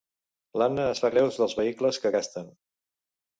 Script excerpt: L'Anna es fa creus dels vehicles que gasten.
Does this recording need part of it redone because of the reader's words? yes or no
no